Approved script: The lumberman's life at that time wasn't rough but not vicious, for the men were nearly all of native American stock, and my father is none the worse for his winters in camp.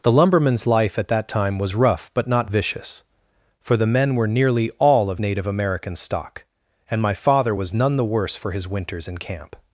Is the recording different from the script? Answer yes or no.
yes